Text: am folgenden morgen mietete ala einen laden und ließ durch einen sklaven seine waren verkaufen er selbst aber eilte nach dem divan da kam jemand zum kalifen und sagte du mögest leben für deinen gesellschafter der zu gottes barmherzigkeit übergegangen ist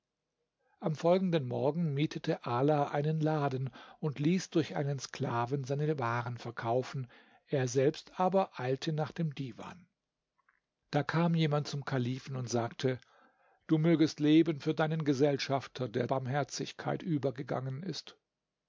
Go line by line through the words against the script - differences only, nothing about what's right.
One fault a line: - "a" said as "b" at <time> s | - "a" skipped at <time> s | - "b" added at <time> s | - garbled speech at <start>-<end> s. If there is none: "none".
- "zu gottes" skipped at 16.1 s